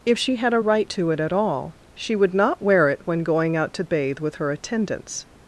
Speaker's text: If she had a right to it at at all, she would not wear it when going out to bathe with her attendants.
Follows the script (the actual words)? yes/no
no